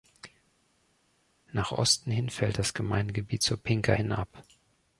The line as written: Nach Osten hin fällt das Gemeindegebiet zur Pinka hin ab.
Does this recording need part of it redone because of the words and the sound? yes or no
no